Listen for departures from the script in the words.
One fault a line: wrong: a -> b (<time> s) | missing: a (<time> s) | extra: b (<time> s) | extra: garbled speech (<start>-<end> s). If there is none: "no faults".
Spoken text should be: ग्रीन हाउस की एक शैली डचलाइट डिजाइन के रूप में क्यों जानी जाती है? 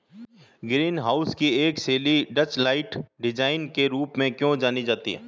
no faults